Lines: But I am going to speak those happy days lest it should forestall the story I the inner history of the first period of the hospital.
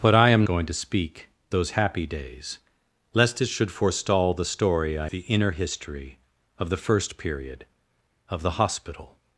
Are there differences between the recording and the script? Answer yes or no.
no